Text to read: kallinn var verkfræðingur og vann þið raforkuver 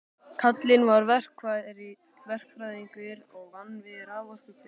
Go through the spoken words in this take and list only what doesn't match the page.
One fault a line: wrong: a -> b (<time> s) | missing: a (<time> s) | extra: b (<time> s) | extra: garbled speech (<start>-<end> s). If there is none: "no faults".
wrong: þið -> við (3.9 s)